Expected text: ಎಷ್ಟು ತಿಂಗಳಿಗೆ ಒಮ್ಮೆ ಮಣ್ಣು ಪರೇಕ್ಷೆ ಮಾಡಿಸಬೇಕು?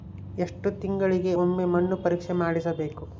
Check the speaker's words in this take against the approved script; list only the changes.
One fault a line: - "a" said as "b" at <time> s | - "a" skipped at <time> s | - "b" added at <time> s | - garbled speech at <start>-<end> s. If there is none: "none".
none